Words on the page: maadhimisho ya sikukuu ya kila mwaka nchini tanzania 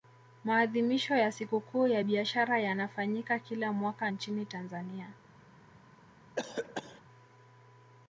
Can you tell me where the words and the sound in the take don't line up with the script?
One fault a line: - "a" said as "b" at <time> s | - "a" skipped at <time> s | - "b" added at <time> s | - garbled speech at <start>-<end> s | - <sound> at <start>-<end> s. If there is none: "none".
- "biashara yanafanyika" added at 2.0 s
- cough at 6.4-7.0 s